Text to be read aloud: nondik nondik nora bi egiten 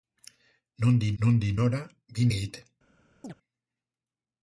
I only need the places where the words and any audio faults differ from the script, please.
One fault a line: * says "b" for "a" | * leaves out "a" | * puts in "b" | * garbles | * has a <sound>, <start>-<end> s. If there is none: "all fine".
* has a chirp, 3.2-3.3 s